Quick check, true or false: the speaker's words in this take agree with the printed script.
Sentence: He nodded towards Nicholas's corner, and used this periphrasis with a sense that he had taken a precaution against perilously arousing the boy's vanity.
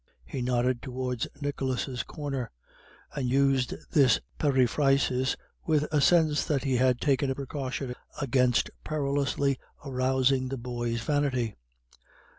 true